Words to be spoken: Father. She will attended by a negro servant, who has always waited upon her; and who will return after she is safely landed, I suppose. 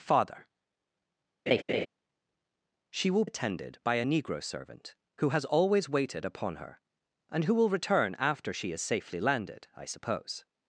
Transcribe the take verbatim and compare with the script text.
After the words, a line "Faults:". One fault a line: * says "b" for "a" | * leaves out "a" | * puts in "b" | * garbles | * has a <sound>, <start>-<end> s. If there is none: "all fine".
Father. She will attended by a negro servant, who has always waited upon her; and who will return after she is safely landed, I suppose.
Faults:
* has a laugh, 1.5-1.9 s